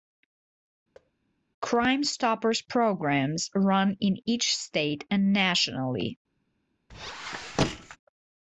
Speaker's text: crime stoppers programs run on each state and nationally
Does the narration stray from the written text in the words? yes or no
yes